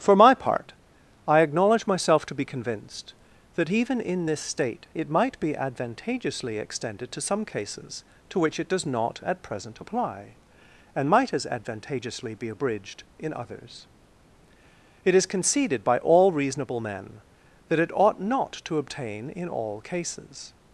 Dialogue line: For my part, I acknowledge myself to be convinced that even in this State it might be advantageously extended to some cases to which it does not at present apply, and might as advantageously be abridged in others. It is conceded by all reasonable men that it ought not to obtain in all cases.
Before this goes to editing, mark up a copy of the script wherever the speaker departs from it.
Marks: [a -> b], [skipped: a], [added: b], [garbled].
For my part, I acknowledge myself to be convinced that even in this State it might be advantageously extended to some cases to which it does not at present apply, and might as advantageously be abridged in others. It is conceded by all reasonable men that it ought not to obtain in all cases.